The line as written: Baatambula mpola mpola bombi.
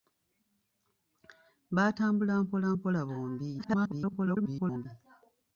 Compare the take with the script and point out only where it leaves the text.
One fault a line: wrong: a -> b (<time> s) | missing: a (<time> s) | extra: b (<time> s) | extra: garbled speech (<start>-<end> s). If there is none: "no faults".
extra: garbled speech (3.6-4.9 s)